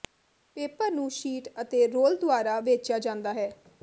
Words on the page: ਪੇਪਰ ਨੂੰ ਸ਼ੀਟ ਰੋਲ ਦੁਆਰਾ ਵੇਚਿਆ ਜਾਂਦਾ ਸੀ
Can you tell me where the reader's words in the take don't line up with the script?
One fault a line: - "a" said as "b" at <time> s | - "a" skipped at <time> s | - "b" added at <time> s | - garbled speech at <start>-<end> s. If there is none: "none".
- "ਅਤੇ" added at 1.6 s
- "ਸੀ" said as "ਹੈ" at 3.3 s